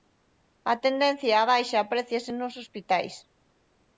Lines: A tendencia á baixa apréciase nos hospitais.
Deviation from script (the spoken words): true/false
false